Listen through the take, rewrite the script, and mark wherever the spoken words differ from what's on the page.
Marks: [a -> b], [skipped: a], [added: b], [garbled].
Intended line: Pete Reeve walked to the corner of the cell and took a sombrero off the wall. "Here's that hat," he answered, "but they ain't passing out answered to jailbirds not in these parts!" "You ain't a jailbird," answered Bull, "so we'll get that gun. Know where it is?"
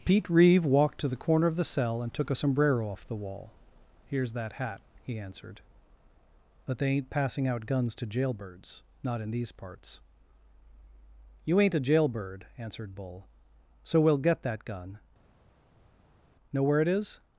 Pete Reeve walked to the corner of the cell and took a sombrero off the wall. "Here's that hat," he answered, "but they ain't passing out [answered -> guns] to jailbirds not in these parts!" "You ain't a jailbird," answered Bull, "so we'll get that gun. Know where it is?"